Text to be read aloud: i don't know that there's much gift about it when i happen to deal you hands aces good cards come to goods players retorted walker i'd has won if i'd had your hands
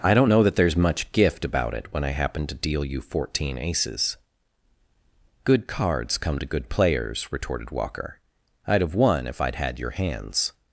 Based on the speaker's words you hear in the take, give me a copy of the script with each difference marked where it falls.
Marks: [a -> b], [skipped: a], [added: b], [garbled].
i don't know that there's much gift about it when i happen to deal you [hands -> fourteen] aces good cards come to [goods -> good] players retorted walker i'd [has -> have] won if i'd had your hands